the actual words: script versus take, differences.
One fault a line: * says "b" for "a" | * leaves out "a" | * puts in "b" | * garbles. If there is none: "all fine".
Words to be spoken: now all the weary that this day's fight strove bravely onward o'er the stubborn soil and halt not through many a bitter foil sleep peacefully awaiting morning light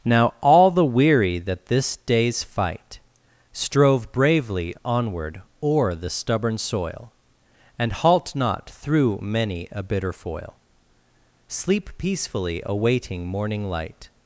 all fine